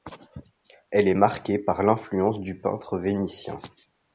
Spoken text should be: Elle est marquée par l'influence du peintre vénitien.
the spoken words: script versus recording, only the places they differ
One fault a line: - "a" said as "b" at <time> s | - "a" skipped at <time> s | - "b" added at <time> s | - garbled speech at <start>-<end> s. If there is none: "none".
none